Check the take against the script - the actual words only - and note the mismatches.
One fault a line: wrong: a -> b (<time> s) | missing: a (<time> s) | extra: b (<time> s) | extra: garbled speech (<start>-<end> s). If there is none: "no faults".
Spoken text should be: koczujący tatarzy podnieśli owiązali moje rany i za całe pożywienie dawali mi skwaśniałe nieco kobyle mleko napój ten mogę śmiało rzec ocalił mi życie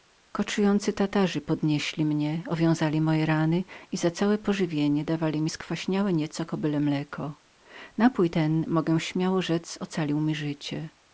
extra: mnie (2.0 s)